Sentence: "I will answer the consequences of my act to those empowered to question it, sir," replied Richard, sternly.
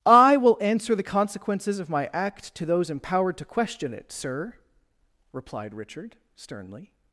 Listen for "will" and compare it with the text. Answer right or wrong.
right